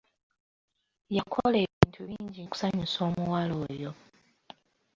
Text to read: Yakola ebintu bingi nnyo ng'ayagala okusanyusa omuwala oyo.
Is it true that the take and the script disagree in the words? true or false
true